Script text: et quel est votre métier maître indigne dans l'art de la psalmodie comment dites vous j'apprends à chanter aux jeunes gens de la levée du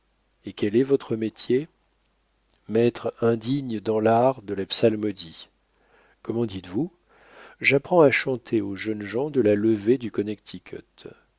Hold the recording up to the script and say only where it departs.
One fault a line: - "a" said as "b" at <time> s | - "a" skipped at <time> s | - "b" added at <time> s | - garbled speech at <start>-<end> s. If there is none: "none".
none